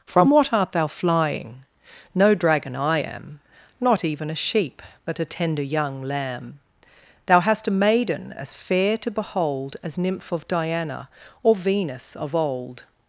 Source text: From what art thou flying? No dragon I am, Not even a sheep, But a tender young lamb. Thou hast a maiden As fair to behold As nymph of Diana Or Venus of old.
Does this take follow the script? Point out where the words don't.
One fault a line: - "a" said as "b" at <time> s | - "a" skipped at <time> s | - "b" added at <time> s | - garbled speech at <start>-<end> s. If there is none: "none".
none